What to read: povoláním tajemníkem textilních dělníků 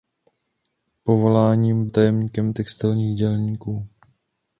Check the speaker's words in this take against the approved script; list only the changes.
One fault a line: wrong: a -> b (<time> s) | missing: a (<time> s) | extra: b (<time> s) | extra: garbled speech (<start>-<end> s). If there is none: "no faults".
no faults